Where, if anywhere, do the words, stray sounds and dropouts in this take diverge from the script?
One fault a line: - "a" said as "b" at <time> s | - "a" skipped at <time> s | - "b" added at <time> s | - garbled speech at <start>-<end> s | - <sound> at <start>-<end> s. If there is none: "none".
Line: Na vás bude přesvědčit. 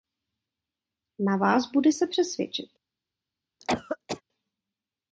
- "se" added at 1.9 s
- cough at 3.6-4.2 s